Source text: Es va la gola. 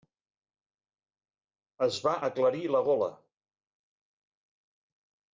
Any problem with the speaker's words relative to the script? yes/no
yes